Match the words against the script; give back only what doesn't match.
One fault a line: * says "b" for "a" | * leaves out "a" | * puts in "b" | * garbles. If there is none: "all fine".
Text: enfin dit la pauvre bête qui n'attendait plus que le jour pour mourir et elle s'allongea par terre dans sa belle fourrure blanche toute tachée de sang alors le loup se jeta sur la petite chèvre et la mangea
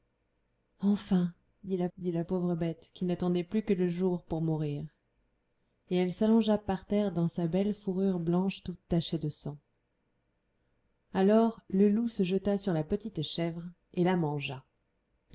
* puts in "dit la"